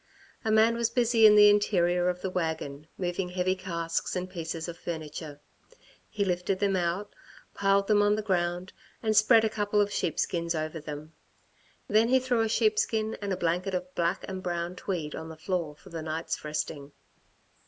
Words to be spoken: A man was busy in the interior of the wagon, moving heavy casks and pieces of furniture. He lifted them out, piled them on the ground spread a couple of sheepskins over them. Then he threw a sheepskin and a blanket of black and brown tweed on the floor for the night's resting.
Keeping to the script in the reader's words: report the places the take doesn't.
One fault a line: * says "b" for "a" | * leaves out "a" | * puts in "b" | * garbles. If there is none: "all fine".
* puts in "and"